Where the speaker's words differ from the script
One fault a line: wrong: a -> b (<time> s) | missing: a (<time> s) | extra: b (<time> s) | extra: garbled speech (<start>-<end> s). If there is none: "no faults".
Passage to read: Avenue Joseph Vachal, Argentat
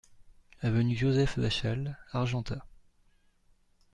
no faults